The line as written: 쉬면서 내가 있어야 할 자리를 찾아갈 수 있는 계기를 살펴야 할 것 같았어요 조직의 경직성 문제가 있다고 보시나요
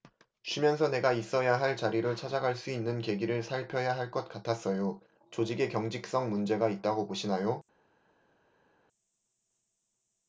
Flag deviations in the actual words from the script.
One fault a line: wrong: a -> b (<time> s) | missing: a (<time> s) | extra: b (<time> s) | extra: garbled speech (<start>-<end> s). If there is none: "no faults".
no faults